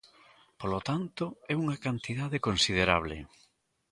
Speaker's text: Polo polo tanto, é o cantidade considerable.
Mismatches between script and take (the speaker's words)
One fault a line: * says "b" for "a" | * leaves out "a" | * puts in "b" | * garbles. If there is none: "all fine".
* leaves out "polo"
* says "unha" for "o"